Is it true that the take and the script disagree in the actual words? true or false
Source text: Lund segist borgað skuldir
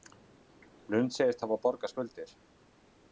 true